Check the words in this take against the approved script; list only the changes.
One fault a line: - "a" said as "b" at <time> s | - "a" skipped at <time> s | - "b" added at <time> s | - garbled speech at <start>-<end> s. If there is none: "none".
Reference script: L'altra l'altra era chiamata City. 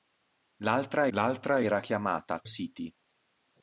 none